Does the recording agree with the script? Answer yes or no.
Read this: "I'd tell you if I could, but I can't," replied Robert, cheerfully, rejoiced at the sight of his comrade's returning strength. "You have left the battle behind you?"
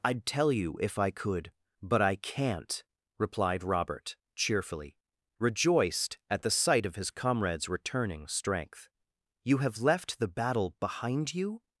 yes